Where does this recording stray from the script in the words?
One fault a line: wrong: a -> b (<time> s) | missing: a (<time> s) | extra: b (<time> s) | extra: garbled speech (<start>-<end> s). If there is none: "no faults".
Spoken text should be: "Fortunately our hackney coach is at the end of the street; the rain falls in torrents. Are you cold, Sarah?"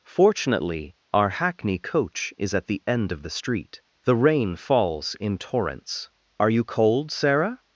no faults